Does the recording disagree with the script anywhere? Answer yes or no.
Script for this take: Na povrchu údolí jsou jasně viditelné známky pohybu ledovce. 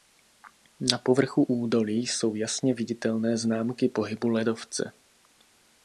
no